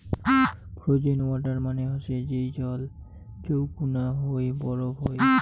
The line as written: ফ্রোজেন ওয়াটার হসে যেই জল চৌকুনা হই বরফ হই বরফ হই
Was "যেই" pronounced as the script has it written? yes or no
yes